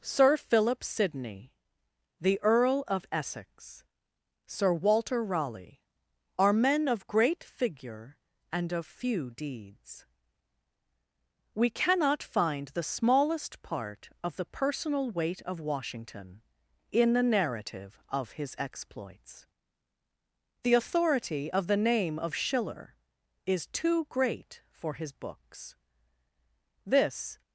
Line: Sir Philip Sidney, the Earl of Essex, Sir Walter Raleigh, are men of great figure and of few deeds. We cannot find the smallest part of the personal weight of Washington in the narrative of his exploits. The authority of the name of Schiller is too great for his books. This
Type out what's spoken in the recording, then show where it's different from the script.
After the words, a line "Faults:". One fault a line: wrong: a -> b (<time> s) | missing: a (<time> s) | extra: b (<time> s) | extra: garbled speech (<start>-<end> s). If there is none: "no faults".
Sir Philip Sidney, the Earl of Essex, Sir Walter Raleigh, are men of great figure and of few deeds. We cannot find the smallest part of the personal weight of Washington in the narrative of his exploits. The authority of the name of Schiller is too great for his books. This
Faults:
no faults